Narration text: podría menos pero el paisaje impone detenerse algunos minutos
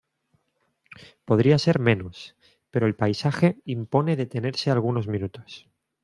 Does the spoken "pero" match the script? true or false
true